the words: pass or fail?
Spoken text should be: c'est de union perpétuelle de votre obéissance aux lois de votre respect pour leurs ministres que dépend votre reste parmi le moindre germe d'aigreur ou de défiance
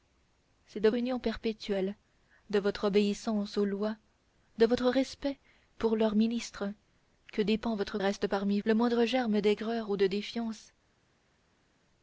pass